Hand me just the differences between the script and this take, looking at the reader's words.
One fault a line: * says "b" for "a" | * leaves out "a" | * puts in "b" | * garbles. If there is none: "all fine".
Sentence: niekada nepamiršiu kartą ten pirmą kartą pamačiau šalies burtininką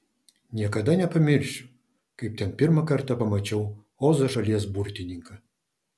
* says "kaip" for "kartą"
* puts in "ozo"